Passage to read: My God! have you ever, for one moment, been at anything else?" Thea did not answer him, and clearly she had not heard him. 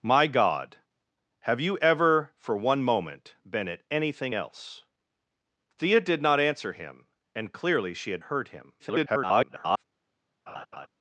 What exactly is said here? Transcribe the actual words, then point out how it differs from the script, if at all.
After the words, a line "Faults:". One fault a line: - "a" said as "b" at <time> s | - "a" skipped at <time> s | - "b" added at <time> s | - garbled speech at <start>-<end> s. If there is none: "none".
My God! have you ever, for one moment, been at anything else?" Thea did not answer him, and clearly she had heard him. [garbled]
Faults:
- "not" skipped at 8.2 s
- garbled speech at 8.8-9.8 s